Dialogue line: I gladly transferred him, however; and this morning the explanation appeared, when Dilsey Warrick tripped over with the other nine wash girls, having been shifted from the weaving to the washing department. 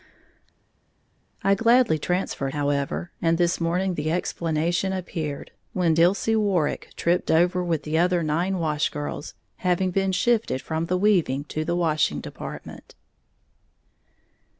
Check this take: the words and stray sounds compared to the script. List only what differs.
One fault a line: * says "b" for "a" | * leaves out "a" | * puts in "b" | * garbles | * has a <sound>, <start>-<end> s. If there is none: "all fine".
* leaves out "him"